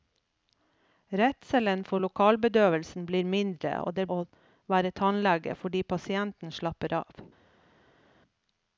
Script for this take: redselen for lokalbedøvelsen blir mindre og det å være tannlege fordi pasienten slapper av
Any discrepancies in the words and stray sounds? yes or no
no